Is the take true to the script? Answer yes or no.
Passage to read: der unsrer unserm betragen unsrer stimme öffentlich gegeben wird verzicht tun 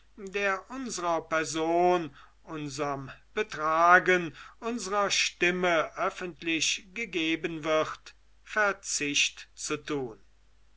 no